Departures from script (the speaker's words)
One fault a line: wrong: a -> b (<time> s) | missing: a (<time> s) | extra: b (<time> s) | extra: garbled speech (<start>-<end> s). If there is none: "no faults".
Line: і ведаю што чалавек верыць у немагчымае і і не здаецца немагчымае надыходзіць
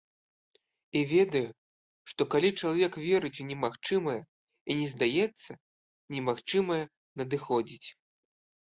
extra: калі (2.4 s)
missing: і (4.7 s)